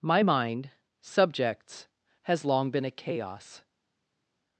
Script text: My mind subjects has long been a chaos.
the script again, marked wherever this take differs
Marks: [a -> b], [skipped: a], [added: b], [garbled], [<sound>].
My mind subjects has long been a chaos.